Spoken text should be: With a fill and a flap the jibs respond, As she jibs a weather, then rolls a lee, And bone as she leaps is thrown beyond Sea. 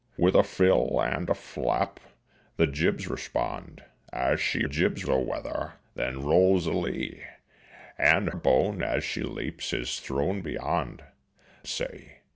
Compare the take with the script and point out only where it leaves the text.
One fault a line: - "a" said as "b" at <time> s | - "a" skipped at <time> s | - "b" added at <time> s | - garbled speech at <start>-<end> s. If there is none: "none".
none